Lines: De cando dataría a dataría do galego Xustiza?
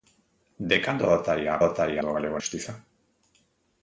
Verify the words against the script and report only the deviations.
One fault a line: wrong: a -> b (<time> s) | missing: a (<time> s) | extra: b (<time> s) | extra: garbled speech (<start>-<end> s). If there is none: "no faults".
no faults